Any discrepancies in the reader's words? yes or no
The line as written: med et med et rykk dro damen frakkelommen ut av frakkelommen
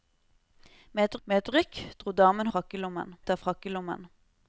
no